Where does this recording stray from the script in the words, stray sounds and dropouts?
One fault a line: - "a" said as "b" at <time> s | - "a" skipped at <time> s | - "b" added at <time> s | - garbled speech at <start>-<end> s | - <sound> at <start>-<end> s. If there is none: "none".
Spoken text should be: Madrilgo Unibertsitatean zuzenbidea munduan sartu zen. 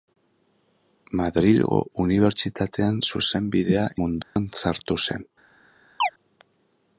- dropout at 4.2-4.4 s
- chirp at 6.0-6.1 s